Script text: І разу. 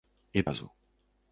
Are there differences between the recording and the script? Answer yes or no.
no